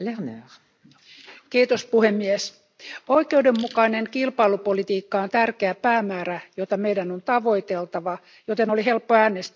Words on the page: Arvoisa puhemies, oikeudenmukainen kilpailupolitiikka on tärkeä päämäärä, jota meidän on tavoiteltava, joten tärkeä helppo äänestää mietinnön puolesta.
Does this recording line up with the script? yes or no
no